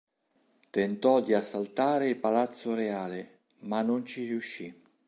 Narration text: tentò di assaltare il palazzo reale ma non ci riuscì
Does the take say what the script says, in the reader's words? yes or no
yes